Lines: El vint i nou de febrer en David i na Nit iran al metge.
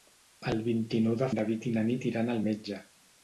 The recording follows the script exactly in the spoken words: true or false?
false